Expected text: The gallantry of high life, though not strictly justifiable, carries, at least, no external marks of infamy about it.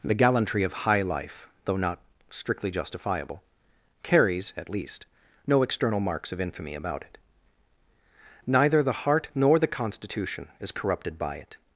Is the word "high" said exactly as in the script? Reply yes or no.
yes